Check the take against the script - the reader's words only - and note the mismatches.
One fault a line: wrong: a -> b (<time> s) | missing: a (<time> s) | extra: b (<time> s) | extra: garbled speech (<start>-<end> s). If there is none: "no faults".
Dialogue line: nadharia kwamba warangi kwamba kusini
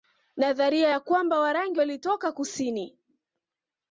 extra: ya (0.9 s)
wrong: kwamba -> walitoka (1.8 s)